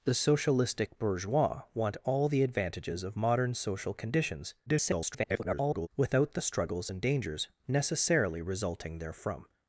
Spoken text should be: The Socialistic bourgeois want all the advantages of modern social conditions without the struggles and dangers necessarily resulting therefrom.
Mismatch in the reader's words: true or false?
true